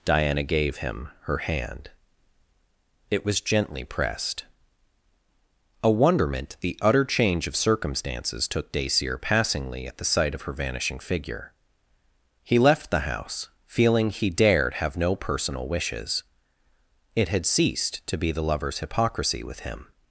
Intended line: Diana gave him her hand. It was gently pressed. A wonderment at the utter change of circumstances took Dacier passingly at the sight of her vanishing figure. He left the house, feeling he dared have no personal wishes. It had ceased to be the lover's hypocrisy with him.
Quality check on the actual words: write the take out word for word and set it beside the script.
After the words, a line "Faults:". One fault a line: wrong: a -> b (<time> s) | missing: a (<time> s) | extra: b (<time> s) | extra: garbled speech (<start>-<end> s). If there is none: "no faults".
Diana gave him her hand. It was gently pressed. A wonderment the utter change of circumstances took Dacier passingly at the sight of her vanishing figure. He left the house, feeling he dared have no personal wishes. It had ceased to be the lover's hypocrisy with him.
Faults:
missing: at (6.6 s)